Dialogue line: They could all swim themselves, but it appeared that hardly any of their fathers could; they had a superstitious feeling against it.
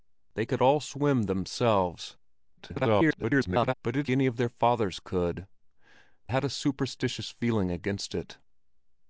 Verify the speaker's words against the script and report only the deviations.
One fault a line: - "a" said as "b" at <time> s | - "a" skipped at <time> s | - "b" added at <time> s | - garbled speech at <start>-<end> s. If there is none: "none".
- garbled speech at 2.6-3.7 s
- "appeared that hardly" skipped at 4.1 s
- "they" skipped at 5.5 s